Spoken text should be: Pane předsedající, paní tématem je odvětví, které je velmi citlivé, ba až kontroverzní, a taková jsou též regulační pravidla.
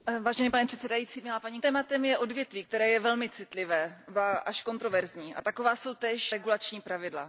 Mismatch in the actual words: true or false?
false